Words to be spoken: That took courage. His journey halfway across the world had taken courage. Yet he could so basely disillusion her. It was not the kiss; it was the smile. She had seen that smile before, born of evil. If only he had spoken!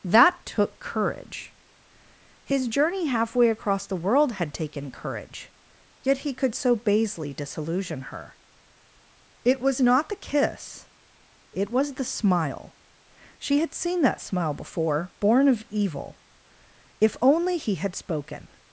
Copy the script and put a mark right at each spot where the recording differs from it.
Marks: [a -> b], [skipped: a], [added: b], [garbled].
That took courage. His journey halfway across the world had taken courage. Yet he could so basely disillusion her. It was not the kiss; it was the smile. She had seen that smile before, born of evil. If only he had spoken!